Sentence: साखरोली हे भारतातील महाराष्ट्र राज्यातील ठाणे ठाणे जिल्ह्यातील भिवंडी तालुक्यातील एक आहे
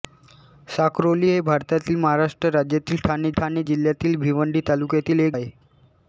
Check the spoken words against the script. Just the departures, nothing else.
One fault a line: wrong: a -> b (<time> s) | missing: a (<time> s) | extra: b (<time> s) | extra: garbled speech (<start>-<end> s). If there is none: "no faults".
no faults